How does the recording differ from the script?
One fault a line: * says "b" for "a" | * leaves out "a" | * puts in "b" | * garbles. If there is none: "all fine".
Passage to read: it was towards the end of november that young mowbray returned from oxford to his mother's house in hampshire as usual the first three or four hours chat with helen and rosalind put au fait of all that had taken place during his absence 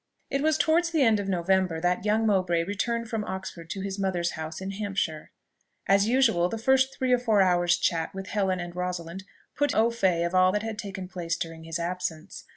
all fine